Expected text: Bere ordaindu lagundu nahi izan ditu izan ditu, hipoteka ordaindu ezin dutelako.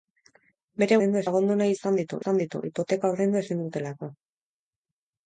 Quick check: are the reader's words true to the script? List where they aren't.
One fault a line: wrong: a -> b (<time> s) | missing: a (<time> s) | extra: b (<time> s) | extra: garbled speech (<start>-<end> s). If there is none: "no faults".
no faults